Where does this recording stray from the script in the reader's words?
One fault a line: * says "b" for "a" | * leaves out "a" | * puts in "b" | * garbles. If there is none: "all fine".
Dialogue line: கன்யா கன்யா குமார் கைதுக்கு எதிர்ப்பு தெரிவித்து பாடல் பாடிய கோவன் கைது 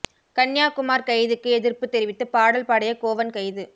* leaves out "கன்யா"